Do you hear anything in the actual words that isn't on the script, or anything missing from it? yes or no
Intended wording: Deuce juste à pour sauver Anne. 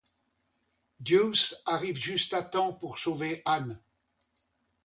yes